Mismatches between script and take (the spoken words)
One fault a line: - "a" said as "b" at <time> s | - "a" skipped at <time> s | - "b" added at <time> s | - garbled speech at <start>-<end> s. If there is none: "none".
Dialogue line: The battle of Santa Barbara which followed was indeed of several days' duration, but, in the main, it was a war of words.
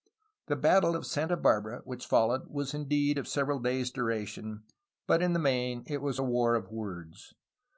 none